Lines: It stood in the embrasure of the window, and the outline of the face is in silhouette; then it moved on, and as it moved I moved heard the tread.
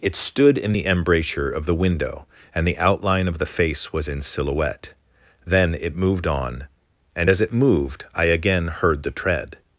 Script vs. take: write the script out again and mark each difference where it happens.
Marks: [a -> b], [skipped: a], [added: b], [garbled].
It stood in the embrasure of the window, and the outline of the face [is -> was] in silhouette; then it moved on, and as it moved I [moved -> again] heard the tread.